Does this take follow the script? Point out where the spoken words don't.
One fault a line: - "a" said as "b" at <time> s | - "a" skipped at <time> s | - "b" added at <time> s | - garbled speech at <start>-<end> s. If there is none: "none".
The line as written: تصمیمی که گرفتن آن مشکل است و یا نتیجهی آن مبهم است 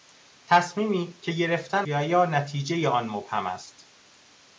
- "آن مشکل است" skipped at 1.9 s